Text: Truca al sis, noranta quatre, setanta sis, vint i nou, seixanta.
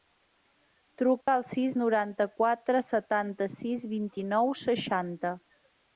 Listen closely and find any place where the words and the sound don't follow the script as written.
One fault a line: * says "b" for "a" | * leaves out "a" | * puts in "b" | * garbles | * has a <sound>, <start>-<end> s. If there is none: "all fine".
* has a dropout, 1.2-1.3 s